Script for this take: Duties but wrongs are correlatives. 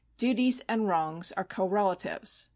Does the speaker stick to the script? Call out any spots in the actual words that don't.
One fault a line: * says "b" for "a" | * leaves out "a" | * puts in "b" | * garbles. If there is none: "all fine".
* says "and" for "but"